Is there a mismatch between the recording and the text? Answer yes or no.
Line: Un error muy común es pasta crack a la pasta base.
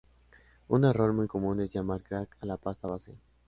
yes